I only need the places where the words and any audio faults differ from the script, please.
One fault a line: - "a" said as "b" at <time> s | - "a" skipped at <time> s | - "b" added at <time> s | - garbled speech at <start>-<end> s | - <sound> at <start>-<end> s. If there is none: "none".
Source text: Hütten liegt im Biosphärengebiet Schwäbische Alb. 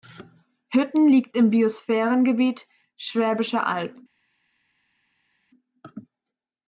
none